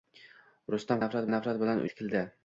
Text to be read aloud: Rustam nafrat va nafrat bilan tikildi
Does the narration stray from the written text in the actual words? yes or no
no